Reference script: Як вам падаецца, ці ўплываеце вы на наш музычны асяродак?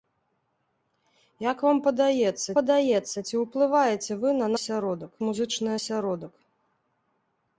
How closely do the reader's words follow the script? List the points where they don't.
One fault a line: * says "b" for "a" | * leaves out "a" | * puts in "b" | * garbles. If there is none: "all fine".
* puts in "падаецца"
* says "асяродак" for "наш"